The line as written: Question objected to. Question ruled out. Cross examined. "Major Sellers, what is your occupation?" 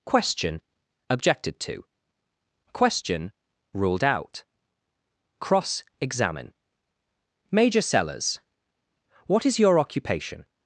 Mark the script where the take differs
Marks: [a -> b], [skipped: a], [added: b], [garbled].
Question objected to. Question ruled out. Cross [examined. -> examine] "Major Sellers, what is your occupation?"